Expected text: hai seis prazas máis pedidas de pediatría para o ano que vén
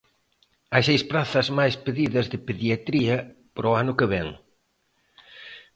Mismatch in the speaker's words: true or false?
false